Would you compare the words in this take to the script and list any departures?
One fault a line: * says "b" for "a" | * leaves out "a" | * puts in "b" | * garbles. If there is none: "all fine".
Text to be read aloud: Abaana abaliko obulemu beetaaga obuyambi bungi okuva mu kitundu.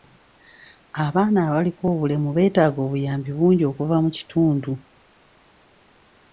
all fine